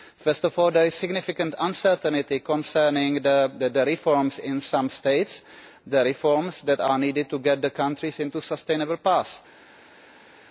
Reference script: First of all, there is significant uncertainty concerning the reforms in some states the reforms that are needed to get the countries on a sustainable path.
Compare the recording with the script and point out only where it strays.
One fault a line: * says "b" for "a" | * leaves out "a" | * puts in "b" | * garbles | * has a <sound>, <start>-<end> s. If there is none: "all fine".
all fine